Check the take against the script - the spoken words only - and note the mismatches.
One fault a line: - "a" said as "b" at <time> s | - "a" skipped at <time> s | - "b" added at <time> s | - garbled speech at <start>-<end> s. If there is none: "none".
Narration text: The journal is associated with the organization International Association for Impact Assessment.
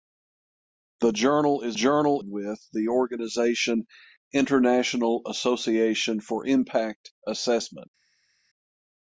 - "associated" said as "journal" at 1.7 s